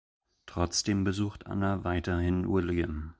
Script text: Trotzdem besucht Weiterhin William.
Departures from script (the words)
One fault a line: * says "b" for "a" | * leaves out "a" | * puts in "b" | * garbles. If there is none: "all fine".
* puts in "Anna"